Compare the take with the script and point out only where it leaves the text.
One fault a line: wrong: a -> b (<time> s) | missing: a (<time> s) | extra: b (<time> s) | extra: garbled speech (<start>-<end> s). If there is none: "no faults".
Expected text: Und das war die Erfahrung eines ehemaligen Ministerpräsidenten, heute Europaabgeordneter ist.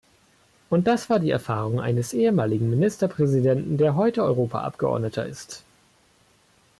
extra: der (3.8 s)